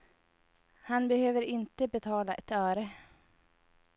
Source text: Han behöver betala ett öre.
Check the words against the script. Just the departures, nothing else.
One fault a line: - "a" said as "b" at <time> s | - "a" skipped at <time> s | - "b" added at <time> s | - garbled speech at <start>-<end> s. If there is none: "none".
- "inte" added at 1.4 s